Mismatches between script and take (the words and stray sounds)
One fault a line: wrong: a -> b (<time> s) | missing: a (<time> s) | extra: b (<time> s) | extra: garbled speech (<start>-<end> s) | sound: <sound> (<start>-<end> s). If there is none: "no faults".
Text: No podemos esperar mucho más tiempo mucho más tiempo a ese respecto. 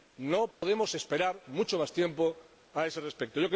sound: dropout (0.5-0.6 s)
missing: mucho más tiempo (2.4 s)